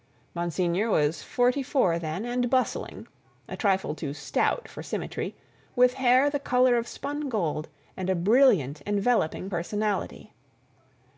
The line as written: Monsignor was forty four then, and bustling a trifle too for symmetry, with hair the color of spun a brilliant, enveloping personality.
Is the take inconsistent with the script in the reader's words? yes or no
yes